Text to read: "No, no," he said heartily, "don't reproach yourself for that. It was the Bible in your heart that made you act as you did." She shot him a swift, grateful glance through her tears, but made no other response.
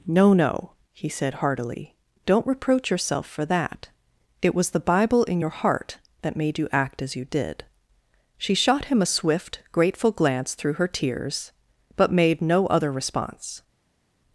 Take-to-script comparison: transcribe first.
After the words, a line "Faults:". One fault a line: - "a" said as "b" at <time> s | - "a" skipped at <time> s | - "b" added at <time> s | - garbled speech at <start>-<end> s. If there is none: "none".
"No, no," he said heartily, "don't reproach yourself for that. It was the Bible in your heart that made you act as you did." She shot him a swift, grateful glance through her tears, but made no other response.
Faults:
none